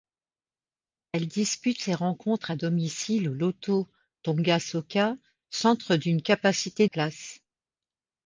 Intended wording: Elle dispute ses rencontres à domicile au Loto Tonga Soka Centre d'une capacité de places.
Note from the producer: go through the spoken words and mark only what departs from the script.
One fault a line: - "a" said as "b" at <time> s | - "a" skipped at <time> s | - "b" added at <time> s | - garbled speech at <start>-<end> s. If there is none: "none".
- "de" skipped at 6.9 s